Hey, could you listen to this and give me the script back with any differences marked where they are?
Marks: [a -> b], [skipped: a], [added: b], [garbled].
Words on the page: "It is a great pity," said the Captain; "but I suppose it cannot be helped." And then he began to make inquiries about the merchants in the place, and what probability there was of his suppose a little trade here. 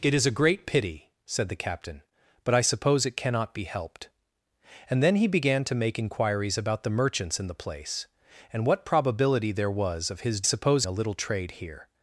"It is a great pity," said the Captain; "but I suppose it cannot be helped." And then he began to make inquiries about the merchants in the place, and what probability there was of his suppose a little trade here.